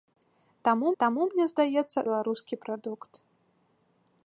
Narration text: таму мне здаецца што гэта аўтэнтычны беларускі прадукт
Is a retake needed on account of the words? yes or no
yes